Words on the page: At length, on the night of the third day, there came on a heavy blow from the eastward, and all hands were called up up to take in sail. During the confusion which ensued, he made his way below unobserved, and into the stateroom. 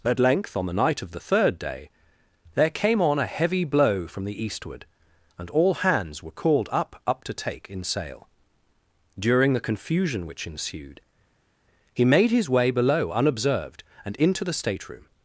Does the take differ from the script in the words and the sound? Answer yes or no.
no